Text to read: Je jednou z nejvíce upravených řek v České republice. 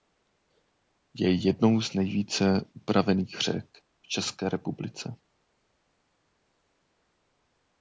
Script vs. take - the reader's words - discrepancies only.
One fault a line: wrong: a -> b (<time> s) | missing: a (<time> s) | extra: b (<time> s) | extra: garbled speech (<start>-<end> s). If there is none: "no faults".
no faults